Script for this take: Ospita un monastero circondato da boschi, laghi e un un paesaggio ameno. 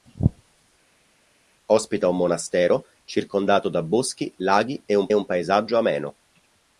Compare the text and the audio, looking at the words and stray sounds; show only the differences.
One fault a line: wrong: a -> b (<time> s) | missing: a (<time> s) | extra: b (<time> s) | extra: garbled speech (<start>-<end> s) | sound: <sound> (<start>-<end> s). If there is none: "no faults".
no faults